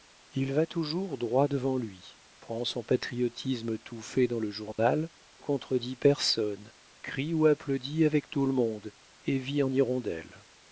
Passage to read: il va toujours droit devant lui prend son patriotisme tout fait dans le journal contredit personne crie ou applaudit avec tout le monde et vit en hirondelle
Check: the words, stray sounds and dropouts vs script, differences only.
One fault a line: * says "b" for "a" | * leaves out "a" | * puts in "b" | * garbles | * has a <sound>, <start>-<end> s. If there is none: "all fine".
* has a dropout, 4.7-4.8 s